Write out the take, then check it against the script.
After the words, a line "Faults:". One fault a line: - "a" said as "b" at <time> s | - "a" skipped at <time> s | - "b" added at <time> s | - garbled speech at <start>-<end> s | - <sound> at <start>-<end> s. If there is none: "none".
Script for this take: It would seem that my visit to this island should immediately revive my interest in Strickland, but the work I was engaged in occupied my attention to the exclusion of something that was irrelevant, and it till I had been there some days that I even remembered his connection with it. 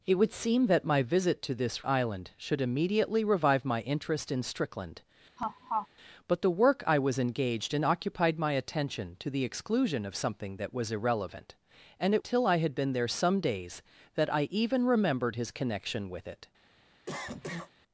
It would seem that my visit to this island should immediately revive my interest in Strickland, but the work I was engaged in occupied my attention to the exclusion of something that was irrelevant, and it till I had been there some days that I even remembered his connection with it.
Faults:
- laugh at 5.4-5.9 s
- cough at 17.1-17.7 s